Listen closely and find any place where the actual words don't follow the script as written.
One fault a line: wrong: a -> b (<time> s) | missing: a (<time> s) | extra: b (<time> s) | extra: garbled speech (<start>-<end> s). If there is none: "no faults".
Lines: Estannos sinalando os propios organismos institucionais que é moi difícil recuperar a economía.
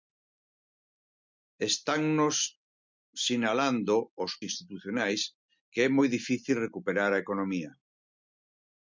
missing: propios organismos (4.3 s)